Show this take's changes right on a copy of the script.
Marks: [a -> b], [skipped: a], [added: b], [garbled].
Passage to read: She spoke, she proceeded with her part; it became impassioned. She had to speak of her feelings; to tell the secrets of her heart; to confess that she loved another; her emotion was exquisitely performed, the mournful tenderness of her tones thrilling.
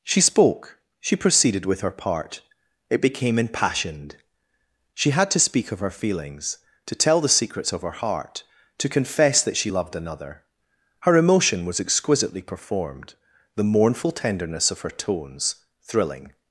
She spoke, she proceeded with her part; it became impassioned. She had to speak of her feelings; to tell the secrets of her heart; to confess that she loved another; her emotion was exquisitely performed, the mournful tenderness of her tones thrilling.